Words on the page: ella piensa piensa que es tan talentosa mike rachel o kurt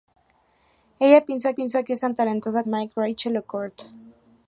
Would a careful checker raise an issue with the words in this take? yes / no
no